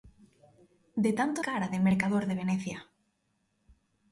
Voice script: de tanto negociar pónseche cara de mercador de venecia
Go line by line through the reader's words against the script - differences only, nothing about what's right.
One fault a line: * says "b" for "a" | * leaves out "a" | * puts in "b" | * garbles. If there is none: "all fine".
* leaves out "negociar pónseche"